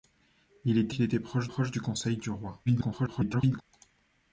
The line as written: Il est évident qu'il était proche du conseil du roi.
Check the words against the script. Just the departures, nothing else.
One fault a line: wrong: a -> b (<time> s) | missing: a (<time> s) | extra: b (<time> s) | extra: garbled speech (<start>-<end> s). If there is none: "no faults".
missing: évident (0.9 s)
extra: proche (1.4 s)
extra: garbled speech (2.7-3.6 s)